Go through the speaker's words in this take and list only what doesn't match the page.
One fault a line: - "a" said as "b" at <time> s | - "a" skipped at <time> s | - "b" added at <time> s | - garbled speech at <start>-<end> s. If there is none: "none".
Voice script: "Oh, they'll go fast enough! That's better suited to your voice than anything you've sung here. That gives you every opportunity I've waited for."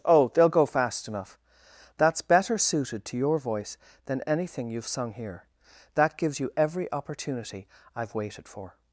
none